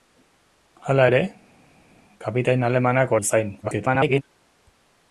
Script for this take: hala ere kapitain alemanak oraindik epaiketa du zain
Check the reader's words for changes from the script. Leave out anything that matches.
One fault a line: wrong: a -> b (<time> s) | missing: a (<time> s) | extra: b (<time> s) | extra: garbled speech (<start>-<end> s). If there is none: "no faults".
missing: oraindik epaiketa (3.1 s)
extra: garbled speech (3.6-4.2 s)